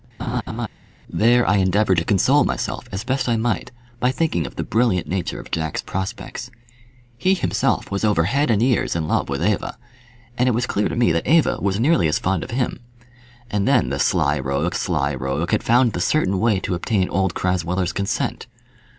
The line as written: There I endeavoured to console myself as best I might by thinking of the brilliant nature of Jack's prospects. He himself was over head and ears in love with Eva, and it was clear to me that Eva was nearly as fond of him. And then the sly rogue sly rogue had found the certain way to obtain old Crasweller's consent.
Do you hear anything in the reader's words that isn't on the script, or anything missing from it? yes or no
no